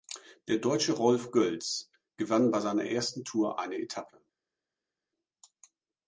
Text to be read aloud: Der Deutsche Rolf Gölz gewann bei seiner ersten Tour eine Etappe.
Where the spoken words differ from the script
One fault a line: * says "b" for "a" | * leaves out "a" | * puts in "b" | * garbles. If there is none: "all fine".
all fine